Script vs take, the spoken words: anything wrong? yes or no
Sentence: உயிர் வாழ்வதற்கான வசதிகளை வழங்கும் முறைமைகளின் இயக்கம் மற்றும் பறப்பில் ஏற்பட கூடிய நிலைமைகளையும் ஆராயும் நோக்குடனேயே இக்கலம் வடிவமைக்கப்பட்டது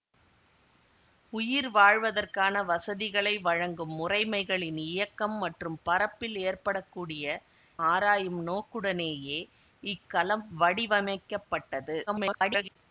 yes